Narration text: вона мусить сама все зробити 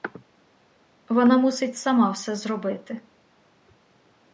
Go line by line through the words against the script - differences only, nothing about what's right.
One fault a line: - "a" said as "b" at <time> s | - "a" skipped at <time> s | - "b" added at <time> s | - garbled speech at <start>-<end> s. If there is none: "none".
none